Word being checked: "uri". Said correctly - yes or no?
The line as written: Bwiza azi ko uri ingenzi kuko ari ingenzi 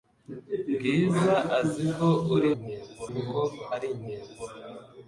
yes